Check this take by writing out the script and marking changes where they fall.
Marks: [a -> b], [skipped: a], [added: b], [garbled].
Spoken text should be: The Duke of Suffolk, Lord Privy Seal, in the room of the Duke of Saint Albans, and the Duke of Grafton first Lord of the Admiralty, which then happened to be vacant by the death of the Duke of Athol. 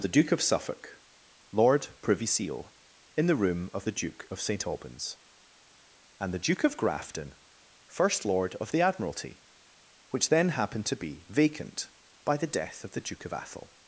The Duke of Suffolk, Lord Privy Seal, in the room of the Duke of Saint Albans, and the Duke of Grafton first Lord of the Admiralty, which then happened to be vacant by the death of the Duke of Athol.